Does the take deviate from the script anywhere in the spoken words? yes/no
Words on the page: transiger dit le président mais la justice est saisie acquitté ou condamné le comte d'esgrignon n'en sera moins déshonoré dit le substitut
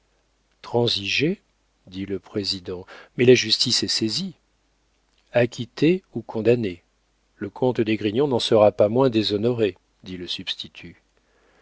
yes